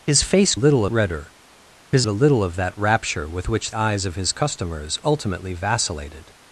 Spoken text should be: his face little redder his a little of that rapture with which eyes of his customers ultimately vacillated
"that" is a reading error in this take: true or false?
false